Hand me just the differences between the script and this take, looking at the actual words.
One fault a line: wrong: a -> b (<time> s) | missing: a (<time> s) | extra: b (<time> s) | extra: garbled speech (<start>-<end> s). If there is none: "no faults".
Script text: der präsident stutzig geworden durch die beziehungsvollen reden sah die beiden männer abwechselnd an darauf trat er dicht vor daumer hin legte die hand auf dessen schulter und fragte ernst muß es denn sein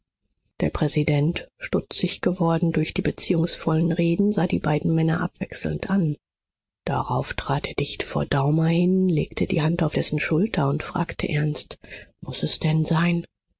no faults